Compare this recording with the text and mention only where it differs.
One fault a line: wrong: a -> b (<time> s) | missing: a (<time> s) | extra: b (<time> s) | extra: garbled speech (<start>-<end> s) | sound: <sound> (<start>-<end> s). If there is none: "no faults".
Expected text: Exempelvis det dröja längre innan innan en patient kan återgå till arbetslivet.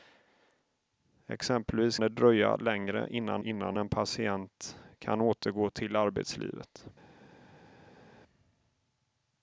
no faults